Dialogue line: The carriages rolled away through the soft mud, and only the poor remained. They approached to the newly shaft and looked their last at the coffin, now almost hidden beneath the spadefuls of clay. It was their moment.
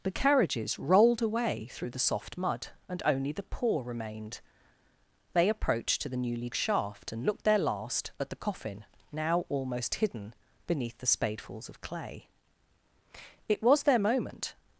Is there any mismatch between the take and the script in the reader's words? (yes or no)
no